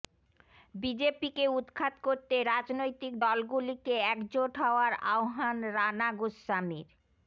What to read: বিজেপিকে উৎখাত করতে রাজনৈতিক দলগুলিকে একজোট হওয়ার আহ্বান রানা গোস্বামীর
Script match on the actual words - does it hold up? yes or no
yes